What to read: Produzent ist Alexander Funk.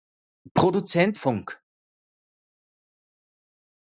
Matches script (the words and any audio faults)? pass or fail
fail